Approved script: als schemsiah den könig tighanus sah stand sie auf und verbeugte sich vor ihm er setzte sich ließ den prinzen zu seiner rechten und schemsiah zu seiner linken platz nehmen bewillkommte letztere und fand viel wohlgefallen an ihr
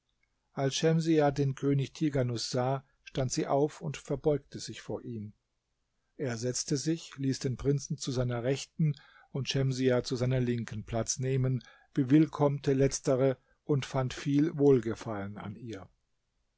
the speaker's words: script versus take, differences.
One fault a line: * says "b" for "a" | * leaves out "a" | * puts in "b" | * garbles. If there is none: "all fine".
all fine